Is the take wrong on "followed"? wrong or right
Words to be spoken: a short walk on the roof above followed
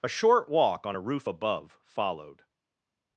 right